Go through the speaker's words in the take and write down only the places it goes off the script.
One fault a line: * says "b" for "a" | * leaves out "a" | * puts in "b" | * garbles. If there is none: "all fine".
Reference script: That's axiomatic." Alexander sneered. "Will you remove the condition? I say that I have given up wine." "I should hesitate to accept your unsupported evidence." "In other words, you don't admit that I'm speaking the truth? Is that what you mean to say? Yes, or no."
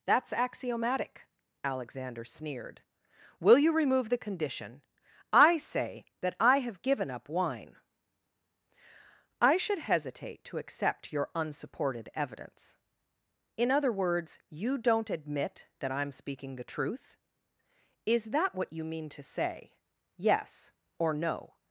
all fine